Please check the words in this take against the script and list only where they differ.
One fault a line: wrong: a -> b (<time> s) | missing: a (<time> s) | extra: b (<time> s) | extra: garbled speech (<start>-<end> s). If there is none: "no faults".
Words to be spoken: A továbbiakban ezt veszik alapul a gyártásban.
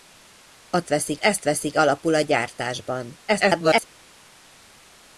wrong: továbbiakban -> veszik (0.9 s)
extra: garbled speech (3.3-3.9 s)